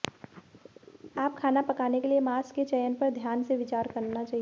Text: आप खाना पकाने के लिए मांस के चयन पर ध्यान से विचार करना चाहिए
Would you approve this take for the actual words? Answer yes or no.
yes